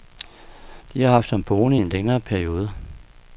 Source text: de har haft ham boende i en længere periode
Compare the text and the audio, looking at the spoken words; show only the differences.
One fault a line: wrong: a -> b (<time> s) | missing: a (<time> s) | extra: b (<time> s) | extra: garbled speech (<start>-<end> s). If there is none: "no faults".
no faults